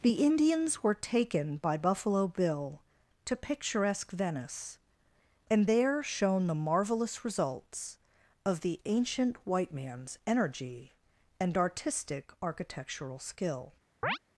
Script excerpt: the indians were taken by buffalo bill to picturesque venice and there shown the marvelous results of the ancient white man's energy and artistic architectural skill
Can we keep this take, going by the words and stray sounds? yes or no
no